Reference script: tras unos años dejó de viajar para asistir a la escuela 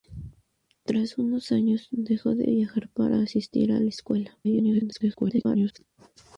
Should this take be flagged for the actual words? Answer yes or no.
yes